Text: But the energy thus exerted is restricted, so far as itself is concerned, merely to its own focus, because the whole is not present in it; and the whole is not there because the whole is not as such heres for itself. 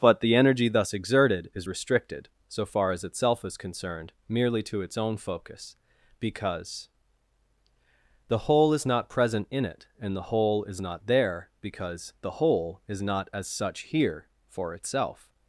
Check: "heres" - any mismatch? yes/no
yes